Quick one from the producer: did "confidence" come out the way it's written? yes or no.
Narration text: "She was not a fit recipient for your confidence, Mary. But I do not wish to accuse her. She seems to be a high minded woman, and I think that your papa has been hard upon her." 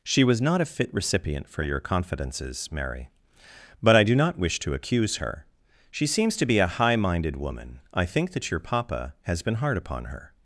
no